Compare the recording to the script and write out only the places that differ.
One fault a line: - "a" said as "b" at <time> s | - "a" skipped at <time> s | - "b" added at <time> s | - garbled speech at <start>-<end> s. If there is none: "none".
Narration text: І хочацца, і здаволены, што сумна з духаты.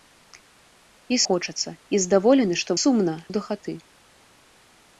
none